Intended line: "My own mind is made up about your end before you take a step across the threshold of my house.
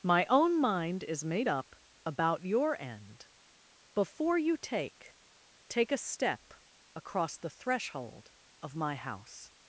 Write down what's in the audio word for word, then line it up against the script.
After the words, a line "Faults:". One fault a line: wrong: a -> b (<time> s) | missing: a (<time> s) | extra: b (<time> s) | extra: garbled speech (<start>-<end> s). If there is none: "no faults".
"My own mind is made up about your end before you take take a step across the threshold of my house.
Faults:
extra: take (5.7 s)